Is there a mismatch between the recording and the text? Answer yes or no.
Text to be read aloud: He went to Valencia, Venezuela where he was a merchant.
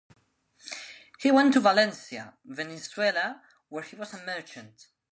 no